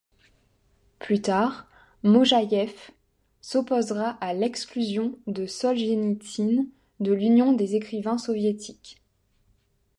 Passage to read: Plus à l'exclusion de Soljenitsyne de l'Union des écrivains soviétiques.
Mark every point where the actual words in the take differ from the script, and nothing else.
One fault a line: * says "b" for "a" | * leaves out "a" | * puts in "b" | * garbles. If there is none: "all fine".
* puts in "tard Mojaïev s'opposera"